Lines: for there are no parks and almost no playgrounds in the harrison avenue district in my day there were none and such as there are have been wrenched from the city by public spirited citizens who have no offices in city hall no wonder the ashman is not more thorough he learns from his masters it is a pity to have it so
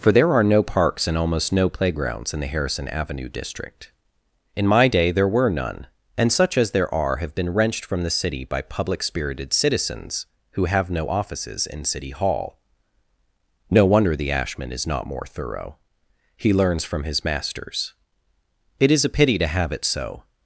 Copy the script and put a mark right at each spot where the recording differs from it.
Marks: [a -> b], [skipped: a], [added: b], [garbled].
for there are no parks and almost no playgrounds in the harrison avenue district in my day there were none and such as there are have been wrenched from the city by public spirited citizens who have no offices in city hall no wonder the ashman is not more thorough he learns from his masters it is a pity to have it so